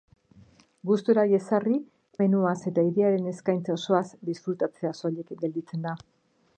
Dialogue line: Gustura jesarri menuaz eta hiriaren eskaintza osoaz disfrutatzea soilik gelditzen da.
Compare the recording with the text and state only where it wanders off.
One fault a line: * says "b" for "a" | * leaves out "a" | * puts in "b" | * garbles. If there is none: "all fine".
all fine